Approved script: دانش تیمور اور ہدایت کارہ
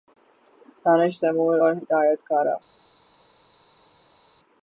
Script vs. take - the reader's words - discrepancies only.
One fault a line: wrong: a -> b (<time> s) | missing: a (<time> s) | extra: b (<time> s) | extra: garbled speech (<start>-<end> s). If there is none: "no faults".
no faults